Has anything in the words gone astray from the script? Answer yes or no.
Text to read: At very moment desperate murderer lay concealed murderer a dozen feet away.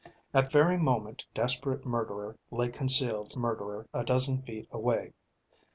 no